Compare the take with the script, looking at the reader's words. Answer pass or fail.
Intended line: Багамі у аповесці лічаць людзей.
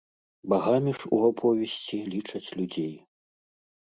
fail